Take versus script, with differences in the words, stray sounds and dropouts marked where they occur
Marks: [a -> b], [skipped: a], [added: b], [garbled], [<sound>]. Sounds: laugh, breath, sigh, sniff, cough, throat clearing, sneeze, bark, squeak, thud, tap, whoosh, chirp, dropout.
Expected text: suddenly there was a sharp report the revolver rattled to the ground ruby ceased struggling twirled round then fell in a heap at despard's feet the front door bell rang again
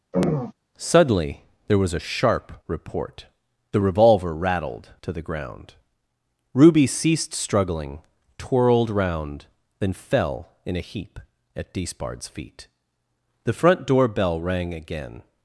[throat clearing] suddenly there was a sharp report the revolver rattled to the ground ruby ceased struggling twirled round then fell in a heap at despard's feet the front door bell rang again